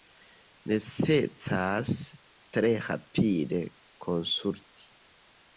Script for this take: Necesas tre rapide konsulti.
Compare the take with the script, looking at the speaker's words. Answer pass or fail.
pass